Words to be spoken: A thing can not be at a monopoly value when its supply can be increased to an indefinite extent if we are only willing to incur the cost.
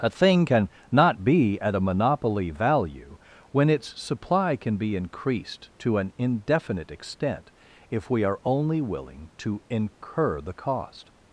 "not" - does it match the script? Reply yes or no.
yes